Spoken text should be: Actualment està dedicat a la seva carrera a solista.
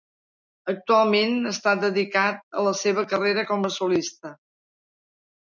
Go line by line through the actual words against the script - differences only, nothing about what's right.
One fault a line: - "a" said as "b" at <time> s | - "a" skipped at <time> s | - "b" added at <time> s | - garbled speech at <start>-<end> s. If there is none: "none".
- "com" added at 3.5 s